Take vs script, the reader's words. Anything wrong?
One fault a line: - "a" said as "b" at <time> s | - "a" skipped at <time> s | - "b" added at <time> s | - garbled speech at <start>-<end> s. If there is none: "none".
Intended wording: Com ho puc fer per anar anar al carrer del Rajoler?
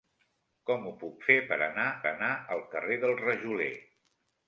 none